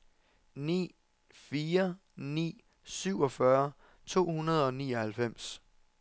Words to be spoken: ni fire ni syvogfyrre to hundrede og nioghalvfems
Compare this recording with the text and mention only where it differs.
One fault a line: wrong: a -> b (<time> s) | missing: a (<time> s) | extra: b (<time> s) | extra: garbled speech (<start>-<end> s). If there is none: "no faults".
no faults